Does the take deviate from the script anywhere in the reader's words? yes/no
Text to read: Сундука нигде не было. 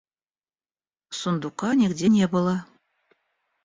no